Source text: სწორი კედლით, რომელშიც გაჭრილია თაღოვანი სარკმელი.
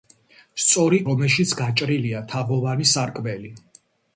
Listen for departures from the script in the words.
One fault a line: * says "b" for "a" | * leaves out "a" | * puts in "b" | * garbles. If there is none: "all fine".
* leaves out "კედლით"